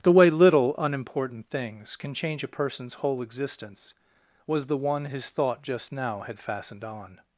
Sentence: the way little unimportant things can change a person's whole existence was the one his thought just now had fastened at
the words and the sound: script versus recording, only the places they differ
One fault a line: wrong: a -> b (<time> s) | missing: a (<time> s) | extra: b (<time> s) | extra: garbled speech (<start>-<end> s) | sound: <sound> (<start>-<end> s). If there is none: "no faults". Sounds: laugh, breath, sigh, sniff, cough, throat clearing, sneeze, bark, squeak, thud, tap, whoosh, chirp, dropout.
wrong: at -> on (6.8 s)